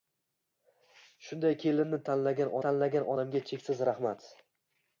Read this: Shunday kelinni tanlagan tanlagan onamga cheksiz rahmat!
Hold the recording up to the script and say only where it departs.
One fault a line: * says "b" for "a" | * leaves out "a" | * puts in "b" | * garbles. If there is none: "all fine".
all fine